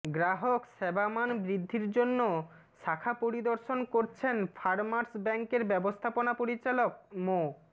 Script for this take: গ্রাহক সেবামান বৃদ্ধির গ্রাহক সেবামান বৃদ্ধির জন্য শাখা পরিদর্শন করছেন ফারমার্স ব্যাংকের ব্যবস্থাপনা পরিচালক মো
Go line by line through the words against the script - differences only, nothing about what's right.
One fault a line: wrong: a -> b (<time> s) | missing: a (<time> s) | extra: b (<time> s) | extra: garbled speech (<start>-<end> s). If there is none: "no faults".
missing: গ্রাহক সেবামান বৃদ্ধির (1.9 s)